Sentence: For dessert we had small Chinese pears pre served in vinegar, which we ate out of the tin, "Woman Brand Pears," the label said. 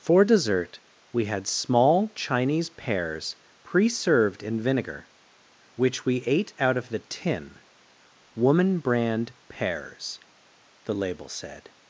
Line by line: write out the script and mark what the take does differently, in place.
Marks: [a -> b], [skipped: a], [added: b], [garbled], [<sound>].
For dessert we had small Chinese pears pre served in vinegar, which we ate out of the tin, "Woman Brand Pears," the label said.